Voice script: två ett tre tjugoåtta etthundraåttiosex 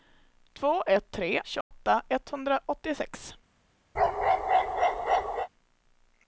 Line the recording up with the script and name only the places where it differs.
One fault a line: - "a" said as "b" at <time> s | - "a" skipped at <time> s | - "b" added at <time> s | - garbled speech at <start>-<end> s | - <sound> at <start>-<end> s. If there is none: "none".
- dropout at 1.6-1.7 s
- bark at 3.9-5.5 s